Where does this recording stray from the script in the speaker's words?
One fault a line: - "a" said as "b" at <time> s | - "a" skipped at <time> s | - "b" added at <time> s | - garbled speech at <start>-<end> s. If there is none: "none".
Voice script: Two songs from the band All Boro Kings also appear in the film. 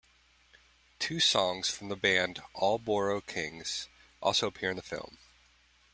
none